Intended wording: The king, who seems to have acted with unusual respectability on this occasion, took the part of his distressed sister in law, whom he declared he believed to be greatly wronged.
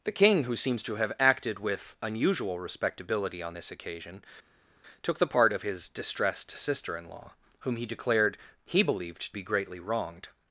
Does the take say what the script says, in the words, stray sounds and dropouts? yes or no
no